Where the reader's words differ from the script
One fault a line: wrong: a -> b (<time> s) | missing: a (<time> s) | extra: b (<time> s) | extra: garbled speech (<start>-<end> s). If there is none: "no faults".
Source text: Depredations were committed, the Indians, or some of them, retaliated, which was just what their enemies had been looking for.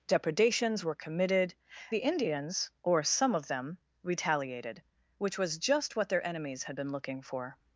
no faults